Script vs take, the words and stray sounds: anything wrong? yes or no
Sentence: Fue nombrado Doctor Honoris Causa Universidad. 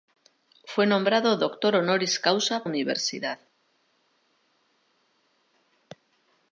no